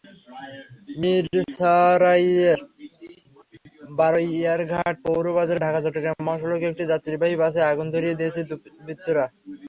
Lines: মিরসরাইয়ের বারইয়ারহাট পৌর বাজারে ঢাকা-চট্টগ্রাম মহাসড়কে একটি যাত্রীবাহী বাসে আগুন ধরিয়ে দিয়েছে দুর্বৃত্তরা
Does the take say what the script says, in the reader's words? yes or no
yes